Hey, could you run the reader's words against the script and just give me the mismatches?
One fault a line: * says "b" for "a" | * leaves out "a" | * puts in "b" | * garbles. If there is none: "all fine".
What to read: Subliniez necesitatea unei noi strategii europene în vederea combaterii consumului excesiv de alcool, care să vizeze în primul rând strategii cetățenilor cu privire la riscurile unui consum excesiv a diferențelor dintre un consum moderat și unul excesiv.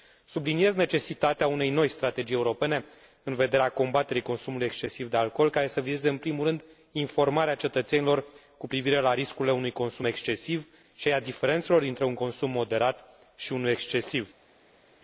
* says "informarea" for "strategii"
* puts in "și"